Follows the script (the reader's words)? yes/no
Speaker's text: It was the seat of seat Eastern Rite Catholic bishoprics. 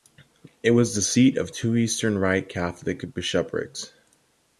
no